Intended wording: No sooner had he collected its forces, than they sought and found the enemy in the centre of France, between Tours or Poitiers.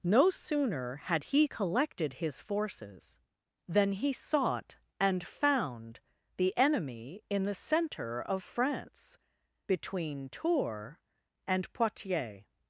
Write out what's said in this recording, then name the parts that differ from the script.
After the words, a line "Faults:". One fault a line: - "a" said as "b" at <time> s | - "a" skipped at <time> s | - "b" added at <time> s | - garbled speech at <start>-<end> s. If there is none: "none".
No sooner had he collected his forces, than he sought and found the enemy in the centre of France, between Tours and Poitiers.
Faults:
- "its" said as "his" at 2.1 s
- "they" said as "he" at 3.9 s
- "or" said as "and" at 11.5 s